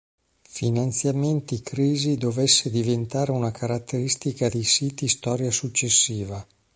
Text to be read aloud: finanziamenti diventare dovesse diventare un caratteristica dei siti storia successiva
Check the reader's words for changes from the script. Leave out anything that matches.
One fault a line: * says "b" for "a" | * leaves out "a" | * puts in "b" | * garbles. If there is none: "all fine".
* says "crisi" for "diventare"
* says "una" for "un"